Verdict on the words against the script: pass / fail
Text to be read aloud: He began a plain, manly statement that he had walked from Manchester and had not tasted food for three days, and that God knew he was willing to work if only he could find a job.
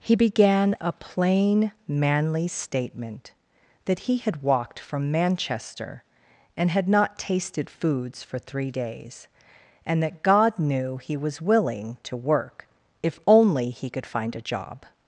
fail